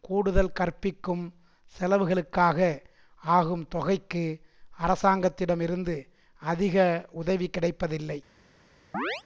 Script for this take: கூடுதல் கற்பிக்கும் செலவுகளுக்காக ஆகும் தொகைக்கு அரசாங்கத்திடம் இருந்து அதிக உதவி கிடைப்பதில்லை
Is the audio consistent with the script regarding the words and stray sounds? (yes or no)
no